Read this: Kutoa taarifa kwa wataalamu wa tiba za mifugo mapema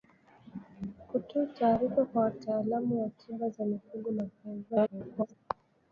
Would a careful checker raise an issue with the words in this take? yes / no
yes